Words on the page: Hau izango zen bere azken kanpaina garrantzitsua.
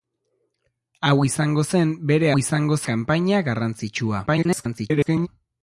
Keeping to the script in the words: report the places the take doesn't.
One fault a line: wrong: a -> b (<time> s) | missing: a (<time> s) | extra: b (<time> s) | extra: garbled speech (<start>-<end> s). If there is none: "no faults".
wrong: azken -> izango (2.4 s)
extra: garbled speech (4.3-5.3 s)